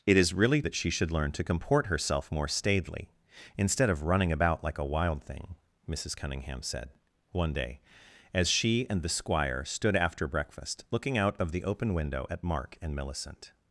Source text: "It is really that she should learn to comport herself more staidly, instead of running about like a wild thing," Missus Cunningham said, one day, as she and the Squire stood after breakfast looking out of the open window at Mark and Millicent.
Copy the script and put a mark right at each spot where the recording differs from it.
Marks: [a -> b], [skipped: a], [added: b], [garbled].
"It is really that she should learn to comport herself more staidly, instead of running about like a wild thing," Missus Cunningham said, one day, as she and the Squire stood after breakfast looking out of the open window at Mark and Millicent.